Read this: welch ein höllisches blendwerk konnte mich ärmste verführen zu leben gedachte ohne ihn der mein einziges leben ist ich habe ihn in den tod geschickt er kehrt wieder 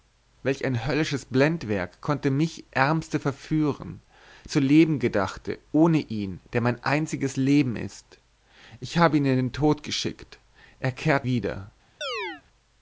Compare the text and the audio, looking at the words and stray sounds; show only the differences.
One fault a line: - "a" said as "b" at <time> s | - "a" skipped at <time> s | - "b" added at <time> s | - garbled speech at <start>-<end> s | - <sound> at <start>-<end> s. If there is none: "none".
- chirp at 12.0-12.4 s